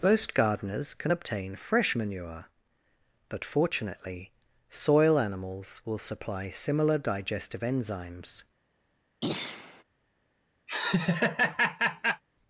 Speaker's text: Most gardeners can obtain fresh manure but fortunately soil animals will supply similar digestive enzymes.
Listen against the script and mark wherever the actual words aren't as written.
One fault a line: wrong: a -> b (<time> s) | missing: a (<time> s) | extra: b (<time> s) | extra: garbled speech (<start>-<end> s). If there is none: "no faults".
no faults